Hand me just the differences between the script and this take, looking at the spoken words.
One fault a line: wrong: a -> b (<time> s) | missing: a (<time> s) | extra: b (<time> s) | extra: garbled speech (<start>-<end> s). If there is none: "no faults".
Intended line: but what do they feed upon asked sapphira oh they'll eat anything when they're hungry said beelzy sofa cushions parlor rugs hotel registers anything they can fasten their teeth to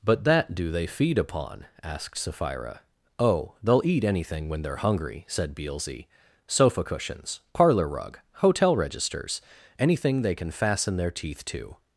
wrong: what -> that (0.2 s)
wrong: rugs -> rug (7.9 s)